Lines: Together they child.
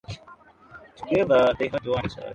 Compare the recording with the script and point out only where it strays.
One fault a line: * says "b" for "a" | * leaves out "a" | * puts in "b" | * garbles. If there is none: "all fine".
* puts in "had one"